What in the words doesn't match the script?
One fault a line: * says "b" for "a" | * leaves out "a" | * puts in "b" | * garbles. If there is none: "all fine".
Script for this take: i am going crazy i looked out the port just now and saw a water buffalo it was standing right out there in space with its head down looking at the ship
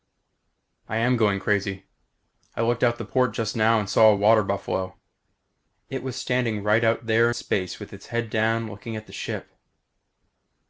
* leaves out "in"